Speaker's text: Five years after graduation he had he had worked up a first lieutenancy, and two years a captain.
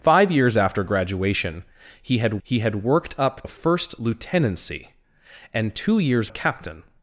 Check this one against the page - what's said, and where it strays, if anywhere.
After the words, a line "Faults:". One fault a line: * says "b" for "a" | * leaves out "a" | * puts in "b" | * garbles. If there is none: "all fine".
Five years after graduation he had he had worked up a first lieutenancy, and two years a captain.
Faults:
all fine